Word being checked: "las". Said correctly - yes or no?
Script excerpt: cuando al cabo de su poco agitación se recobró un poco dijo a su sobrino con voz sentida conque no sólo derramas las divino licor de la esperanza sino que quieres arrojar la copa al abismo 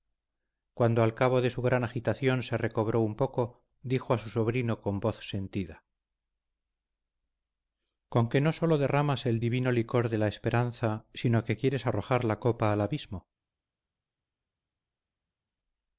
no